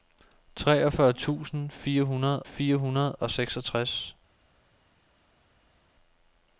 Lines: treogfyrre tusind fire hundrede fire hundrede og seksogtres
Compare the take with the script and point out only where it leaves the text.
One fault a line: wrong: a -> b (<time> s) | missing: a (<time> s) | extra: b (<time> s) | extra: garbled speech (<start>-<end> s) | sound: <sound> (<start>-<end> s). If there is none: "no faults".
no faults